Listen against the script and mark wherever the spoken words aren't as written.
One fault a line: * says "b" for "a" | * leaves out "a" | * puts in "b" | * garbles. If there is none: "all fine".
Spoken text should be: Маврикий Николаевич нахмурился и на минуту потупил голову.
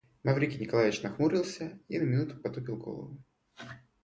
all fine